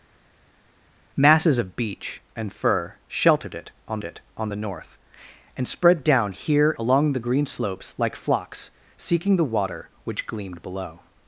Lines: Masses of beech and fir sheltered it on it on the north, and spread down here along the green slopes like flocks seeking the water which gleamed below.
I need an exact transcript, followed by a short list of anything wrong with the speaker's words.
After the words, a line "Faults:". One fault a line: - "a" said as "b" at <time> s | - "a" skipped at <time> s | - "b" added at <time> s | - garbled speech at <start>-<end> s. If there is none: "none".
Masses of beech and fir sheltered it on it on the north, and spread down here along the green slopes like flocks seeking the water which gleamed below.
Faults:
none